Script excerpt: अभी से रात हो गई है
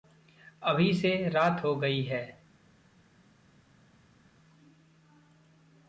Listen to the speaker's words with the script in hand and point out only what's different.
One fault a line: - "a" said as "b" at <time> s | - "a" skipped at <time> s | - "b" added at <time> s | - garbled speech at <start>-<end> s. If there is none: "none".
none